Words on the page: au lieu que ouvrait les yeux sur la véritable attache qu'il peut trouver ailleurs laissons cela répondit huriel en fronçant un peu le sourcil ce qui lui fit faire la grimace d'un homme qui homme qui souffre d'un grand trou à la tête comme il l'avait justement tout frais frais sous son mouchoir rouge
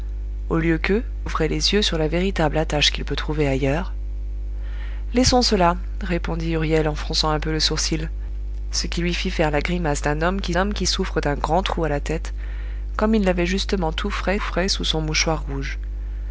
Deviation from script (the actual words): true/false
false